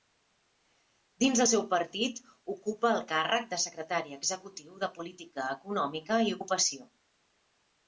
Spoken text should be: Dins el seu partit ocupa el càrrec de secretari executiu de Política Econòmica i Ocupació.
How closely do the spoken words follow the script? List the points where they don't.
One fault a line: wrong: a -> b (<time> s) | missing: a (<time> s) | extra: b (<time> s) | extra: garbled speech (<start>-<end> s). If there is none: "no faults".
no faults